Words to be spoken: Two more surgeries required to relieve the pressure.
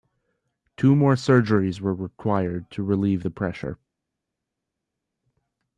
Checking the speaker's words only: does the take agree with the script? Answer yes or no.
no